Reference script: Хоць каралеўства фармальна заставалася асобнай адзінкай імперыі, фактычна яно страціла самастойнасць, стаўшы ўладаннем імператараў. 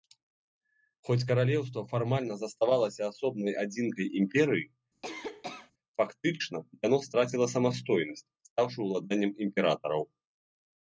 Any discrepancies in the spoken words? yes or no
no